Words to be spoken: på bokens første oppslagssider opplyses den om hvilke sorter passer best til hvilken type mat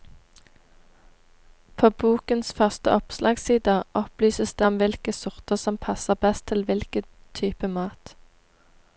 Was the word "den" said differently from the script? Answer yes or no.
yes